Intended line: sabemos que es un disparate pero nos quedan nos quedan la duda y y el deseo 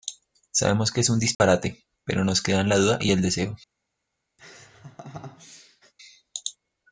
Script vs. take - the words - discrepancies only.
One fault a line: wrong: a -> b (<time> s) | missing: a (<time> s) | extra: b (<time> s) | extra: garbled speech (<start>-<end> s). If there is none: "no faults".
missing: nos quedan (2.7 s)
missing: y (3.1 s)